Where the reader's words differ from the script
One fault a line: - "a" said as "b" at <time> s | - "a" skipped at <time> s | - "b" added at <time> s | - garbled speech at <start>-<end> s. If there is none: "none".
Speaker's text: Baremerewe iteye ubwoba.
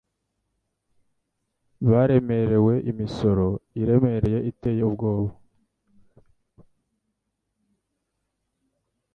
- "imisoro iremereye" added at 2.9 s